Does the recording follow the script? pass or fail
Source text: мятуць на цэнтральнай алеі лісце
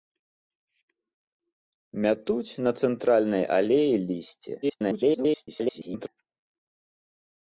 fail